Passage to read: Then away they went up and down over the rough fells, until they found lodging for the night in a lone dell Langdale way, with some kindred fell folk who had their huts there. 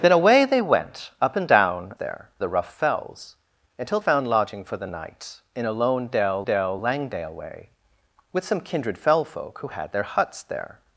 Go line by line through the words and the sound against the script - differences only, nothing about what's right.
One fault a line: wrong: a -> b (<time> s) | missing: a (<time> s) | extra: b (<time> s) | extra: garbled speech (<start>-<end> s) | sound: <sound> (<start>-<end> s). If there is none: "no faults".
wrong: over -> there (1.9 s)
missing: they (4.0 s)
extra: dell (6.4 s)